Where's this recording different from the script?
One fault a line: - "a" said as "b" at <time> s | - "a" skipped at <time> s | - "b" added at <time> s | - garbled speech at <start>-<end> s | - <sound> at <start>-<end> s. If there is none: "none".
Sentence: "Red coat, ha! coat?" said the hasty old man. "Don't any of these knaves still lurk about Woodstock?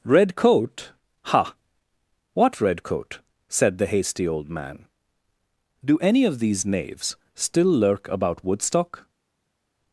- "what red" added at 2.3 s
- "Don't" said as "Do" at 5.8 s